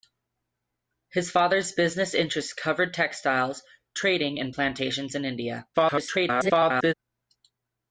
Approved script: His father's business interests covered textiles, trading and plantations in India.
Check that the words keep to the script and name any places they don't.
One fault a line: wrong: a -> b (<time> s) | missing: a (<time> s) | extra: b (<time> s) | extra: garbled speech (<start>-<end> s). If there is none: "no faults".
extra: garbled speech (5.7-6.9 s)